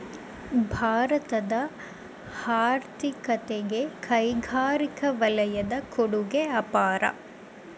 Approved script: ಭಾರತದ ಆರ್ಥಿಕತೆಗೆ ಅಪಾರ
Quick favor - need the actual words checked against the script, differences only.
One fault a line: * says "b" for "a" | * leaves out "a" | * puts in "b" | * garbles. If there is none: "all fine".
* puts in "ಕೈಗಾರಿಕಾ ವಲಯದ ಕೊಡುಗೆ"